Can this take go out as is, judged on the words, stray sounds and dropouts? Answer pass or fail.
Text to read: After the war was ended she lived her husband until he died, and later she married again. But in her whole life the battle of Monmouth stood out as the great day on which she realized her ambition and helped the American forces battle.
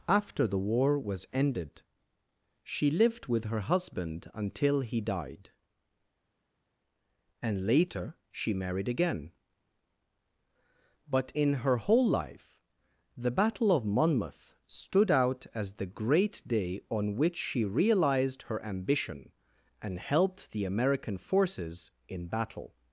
fail